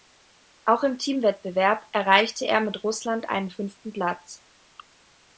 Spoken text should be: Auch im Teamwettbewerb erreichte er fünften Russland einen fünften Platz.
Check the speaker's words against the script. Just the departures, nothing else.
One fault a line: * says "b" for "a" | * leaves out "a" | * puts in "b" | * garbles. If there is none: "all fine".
* says "mit" for "fünften"